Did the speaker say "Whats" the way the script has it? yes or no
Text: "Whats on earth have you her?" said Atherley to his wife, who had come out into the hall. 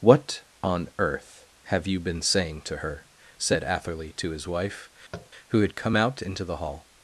no